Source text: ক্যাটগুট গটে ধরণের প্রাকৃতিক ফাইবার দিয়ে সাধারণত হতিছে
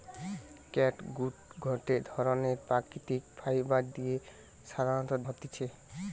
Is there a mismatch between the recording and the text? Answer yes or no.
no